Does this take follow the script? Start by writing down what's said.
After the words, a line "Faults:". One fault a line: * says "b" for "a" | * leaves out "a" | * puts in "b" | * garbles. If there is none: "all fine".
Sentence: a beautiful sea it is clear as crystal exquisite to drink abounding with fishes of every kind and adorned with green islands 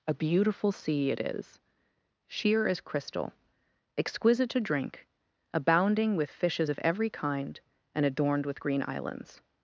a beautiful sea it is sheer as crystal exquisite to drink abounding with fishes of every kind and adorned with green islands
Faults:
* says "sheer" for "clear"